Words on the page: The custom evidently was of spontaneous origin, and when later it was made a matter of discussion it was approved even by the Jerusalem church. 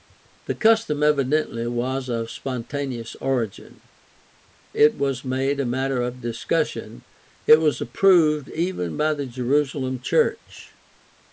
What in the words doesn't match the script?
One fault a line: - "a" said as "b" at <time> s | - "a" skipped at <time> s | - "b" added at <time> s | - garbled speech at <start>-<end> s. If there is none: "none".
- "and when later" skipped at 3.8 s